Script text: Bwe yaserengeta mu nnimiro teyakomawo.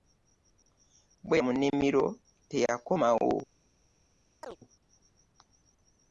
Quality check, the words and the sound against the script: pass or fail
fail